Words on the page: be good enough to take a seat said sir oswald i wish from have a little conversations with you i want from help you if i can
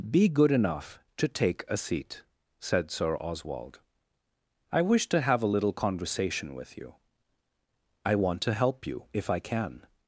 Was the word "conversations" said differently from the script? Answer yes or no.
yes